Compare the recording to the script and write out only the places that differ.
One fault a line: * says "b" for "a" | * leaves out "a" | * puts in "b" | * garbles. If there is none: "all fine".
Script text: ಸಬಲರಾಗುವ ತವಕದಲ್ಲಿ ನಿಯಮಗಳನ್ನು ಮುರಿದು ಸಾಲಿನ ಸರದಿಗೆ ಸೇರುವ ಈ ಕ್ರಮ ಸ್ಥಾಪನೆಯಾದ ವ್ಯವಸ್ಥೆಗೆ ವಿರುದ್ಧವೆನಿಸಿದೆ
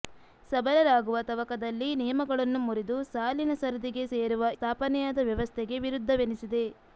* leaves out "ಈ ಕ್ರಮ"